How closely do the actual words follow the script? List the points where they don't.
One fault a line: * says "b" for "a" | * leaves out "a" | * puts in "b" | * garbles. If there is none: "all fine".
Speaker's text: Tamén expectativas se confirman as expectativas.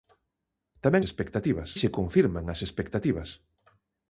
all fine